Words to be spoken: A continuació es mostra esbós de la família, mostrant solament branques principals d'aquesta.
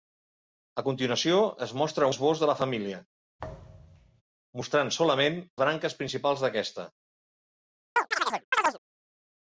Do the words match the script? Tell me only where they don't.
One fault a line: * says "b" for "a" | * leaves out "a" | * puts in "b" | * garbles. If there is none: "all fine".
all fine